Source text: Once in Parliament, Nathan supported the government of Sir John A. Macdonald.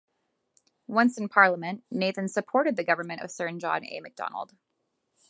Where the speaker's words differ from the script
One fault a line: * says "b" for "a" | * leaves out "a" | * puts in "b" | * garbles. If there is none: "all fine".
all fine